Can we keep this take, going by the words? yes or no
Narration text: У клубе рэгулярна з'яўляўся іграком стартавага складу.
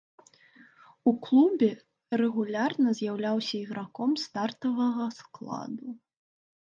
yes